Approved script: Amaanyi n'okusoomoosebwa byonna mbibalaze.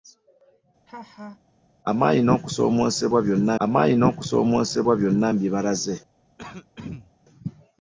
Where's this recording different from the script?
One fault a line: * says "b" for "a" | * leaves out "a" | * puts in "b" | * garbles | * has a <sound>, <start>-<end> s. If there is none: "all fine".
* has a laugh, 0.9-1.4 s
* puts in "amaanyi n'okusoomoosebwa byonna"
* has a throat clearing, 6.4-7.1 s